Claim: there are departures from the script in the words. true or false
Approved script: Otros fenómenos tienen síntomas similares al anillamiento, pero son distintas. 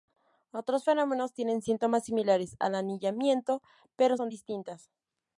false